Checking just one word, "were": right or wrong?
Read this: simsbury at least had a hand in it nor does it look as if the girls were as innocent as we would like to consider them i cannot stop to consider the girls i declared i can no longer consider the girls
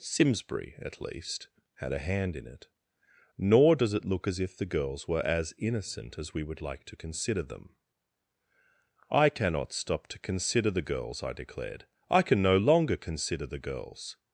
right